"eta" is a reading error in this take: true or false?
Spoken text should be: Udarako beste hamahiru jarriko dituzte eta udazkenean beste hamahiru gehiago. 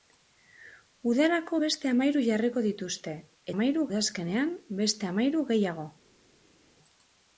true